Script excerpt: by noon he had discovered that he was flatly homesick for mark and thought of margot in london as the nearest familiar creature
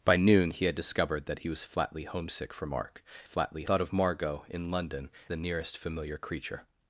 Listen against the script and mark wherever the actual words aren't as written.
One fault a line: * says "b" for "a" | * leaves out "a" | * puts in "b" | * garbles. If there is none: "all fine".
* says "flatly" for "and"
* leaves out "as"